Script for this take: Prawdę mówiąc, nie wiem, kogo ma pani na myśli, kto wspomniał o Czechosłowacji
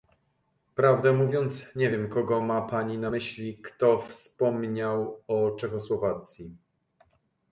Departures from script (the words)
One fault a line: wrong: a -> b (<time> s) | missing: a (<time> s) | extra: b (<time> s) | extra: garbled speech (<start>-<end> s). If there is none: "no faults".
no faults